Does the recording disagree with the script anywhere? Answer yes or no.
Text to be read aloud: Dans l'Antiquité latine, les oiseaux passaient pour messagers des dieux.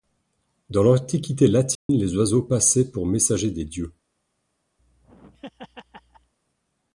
no